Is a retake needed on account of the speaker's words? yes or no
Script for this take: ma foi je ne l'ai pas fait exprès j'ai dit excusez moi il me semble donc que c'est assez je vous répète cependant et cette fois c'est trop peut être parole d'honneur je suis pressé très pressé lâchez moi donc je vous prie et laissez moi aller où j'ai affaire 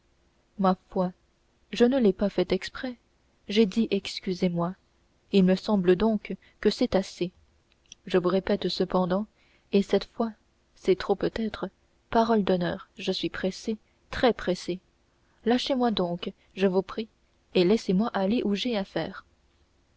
no